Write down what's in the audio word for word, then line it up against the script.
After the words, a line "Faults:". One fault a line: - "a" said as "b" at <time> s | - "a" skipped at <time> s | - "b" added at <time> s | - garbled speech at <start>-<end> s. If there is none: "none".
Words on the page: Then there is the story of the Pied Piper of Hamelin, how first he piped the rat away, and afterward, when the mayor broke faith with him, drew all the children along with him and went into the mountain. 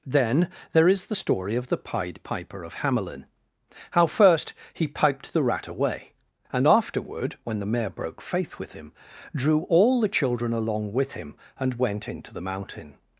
Then there is the story of the Pied Piper of Hamelin, how first he piped the rat away, and afterward, when the mayor broke faith with him, drew all the children along with him and went into the mountain.
Faults:
none